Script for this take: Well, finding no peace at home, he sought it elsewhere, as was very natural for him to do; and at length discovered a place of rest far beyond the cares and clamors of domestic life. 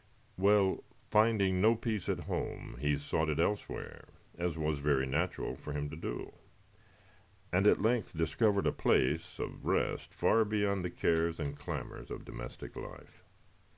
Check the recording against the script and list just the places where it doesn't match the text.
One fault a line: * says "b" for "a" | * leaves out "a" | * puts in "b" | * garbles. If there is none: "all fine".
all fine